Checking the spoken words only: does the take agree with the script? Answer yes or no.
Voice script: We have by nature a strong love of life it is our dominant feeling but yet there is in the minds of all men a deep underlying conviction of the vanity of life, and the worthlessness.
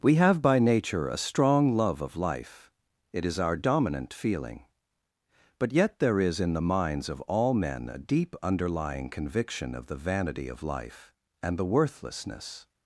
yes